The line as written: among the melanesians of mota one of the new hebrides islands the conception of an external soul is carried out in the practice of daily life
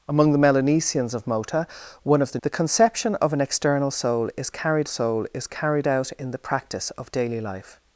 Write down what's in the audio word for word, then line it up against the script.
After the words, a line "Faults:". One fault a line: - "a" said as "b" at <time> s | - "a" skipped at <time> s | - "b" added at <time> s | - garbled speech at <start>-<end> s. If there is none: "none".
among the melanesians of mota one of the the conception of an external soul is carried soul is carried out in the practice of daily life
Faults:
- "new hebrides islands" skipped at 2.4 s
- "soul is carried" added at 4.9 s